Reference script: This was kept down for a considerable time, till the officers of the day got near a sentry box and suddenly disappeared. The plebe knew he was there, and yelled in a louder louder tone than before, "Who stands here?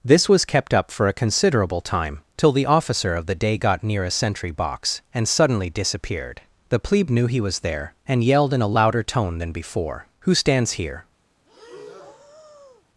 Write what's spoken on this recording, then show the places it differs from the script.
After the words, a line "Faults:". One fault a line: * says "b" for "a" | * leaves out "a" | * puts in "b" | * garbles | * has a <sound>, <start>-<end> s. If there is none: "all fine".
This was kept up for a considerable time, till the officer of the day got near a sentry box and suddenly disappeared. The plebe knew he was there, and yelled in a louder tone than before, "Who stands here?
Faults:
* says "up" for "down"
* says "officer" for "officers"
* leaves out "louder"
* has a breath, 11.5-12.9 s